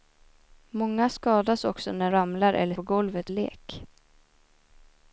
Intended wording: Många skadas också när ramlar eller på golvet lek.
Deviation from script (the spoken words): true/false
false